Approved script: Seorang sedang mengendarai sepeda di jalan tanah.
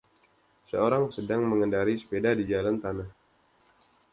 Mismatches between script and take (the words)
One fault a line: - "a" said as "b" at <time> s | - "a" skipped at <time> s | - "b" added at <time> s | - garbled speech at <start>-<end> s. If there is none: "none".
none